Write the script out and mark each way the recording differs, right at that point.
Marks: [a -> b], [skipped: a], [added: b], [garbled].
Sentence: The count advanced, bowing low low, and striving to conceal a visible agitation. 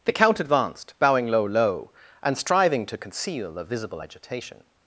The count advanced, bowing low low, and striving to conceal a visible agitation.